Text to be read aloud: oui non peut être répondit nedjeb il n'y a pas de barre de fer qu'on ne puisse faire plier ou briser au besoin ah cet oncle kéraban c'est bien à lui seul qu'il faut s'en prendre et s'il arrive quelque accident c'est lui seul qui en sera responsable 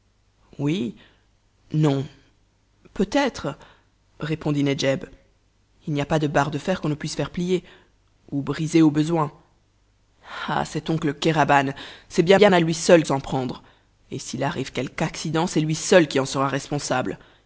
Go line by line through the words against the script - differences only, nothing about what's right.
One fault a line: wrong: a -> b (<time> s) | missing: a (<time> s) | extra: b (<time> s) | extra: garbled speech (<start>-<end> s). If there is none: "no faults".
extra: bien (12.4 s)
missing: qu'il faut (13.1 s)